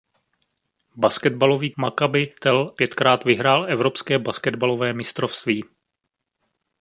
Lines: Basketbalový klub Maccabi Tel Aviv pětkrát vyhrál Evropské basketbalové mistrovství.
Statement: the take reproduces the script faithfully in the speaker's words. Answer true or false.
false